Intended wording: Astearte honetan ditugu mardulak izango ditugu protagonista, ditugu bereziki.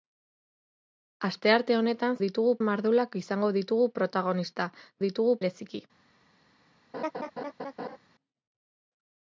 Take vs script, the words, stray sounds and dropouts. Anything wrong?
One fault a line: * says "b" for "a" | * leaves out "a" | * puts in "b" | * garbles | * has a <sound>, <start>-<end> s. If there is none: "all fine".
* has a laugh, 6.9-8.0 s